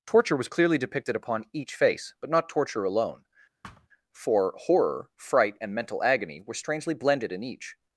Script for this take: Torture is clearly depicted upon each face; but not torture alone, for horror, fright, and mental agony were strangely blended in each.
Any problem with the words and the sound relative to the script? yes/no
yes